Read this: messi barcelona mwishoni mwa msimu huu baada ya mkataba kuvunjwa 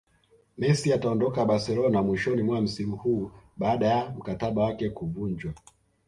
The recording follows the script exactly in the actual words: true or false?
false